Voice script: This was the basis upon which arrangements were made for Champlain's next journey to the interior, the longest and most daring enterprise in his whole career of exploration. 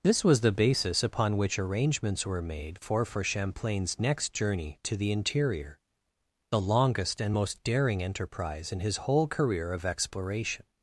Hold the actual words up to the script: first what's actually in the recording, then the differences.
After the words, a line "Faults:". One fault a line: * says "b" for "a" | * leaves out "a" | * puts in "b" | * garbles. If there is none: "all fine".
This was the basis upon which arrangements were made for for Champlain's next journey to the interior, the longest and most daring enterprise in his whole career of exploration.
Faults:
* puts in "for"